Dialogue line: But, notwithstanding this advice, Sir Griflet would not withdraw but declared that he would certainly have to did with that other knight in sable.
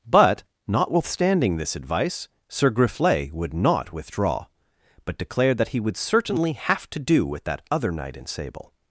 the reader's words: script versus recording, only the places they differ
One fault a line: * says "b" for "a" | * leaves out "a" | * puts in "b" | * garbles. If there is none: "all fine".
* says "do" for "did"